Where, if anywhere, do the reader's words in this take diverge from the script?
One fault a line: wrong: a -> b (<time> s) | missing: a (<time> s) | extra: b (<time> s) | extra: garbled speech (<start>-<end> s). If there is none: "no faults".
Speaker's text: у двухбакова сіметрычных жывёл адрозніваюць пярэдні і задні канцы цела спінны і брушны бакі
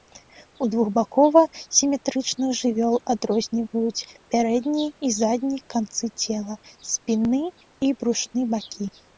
no faults